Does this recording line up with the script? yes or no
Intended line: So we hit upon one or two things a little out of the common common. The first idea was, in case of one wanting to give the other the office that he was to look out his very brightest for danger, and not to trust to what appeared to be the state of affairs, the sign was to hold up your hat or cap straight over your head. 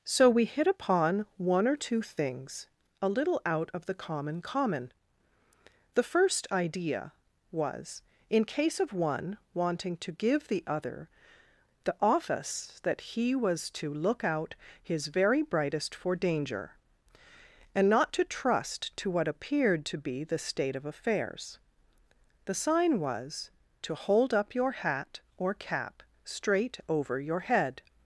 yes